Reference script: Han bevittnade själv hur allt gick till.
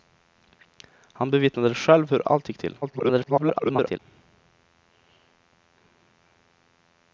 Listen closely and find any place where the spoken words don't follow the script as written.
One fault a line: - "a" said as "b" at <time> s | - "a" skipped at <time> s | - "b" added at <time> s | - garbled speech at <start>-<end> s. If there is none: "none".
- garbled speech at 2.8-4.0 s